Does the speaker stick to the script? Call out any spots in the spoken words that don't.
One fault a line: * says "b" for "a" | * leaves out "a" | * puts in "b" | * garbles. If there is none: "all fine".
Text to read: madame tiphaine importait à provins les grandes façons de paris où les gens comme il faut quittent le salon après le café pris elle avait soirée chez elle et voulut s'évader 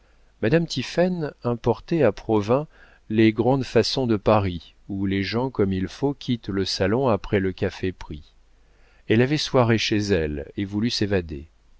all fine